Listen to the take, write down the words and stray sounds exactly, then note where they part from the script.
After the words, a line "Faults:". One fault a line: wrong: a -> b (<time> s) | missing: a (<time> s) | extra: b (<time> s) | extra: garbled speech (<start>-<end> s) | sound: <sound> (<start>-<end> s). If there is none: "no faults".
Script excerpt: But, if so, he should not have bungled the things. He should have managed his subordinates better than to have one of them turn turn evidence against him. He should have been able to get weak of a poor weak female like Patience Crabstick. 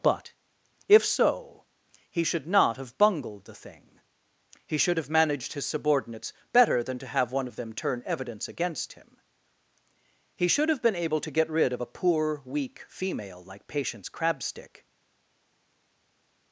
But, if so, he should not have bungled the thing. He should have managed his subordinates better than to have one of them turn evidence against him. He should have been able to get rid of a poor weak female like Patience Crabstick.
Faults:
wrong: things -> thing (3.5 s)
missing: turn (8.0 s)
wrong: weak -> rid (11.5 s)